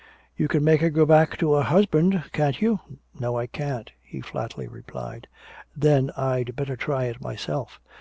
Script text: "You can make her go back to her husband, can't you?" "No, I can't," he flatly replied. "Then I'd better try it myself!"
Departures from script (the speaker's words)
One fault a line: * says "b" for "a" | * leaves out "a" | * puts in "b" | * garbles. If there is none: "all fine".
all fine